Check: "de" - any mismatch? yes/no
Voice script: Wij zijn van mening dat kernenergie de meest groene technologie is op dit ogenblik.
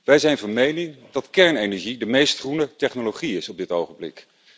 no